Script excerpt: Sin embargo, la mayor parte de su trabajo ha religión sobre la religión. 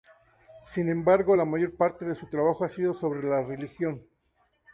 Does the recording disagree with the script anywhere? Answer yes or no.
yes